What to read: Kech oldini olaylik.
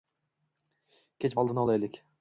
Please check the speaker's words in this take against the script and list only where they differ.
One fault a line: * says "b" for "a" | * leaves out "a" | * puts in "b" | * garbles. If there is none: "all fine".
all fine